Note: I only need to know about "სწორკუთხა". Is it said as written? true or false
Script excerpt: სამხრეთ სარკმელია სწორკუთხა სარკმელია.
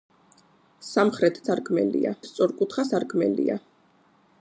true